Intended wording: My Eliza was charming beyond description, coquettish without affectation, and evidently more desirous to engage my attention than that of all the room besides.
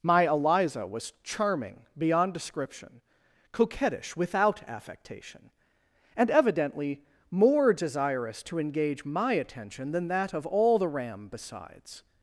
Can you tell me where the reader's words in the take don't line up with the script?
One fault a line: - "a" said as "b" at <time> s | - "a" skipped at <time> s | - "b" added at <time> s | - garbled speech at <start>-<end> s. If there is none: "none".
- "room" said as "ram" at 10.9 s